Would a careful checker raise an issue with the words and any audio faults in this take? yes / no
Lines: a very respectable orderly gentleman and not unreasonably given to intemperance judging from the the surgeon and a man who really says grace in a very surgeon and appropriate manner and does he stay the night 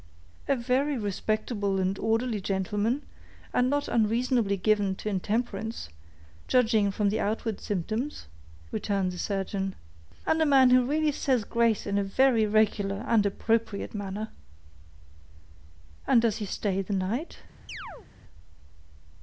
yes